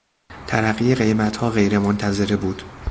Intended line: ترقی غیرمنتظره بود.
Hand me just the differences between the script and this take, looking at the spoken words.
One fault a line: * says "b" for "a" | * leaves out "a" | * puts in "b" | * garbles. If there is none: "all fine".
* puts in "قیمتها"